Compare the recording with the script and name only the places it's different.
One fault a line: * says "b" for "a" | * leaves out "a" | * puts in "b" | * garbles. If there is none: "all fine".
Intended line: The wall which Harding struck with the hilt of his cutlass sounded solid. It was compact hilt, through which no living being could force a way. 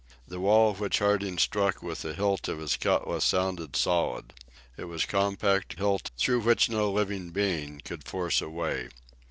all fine